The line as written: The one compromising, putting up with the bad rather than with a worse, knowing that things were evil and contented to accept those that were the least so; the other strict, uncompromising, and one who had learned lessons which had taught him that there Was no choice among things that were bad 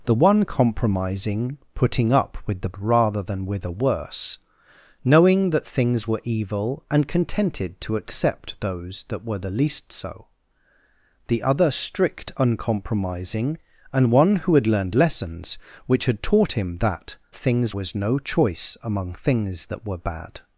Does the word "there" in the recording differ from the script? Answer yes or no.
yes